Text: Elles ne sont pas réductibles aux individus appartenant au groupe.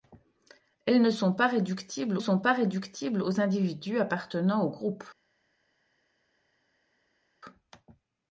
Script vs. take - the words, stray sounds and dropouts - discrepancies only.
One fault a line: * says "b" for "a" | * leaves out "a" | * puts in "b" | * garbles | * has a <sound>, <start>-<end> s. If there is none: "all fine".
* puts in "sont pas réductibles"